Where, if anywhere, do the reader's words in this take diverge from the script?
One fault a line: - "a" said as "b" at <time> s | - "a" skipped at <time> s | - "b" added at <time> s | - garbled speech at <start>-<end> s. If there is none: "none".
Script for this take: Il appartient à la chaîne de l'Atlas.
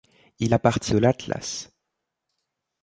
- "à la chaîne" skipped at 0.9 s